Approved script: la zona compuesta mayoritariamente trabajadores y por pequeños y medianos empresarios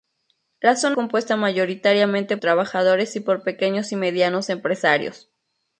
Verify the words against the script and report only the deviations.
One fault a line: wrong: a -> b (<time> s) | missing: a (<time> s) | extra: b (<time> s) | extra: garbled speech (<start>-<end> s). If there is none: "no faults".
no faults